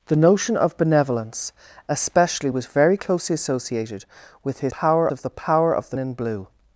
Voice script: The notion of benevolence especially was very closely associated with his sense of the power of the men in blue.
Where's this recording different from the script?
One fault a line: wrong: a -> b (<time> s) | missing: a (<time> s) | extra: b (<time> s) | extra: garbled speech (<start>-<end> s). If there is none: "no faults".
wrong: sense -> power (4.7 s)
missing: men (6.0 s)